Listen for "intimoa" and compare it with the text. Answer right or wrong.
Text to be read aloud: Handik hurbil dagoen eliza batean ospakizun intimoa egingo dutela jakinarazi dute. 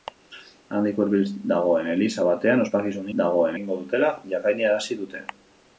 wrong